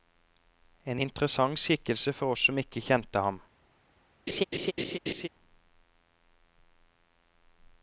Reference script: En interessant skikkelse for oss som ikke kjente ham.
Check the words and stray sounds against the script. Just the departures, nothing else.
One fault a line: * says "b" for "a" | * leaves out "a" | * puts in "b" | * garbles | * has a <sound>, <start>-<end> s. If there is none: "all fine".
* has a laugh, 4.3-5.3 s